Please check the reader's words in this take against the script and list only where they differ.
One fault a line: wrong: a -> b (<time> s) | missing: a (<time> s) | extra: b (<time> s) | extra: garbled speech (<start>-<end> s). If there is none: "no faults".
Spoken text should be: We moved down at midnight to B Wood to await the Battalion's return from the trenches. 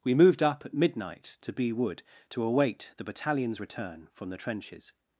wrong: down -> up (0.4 s)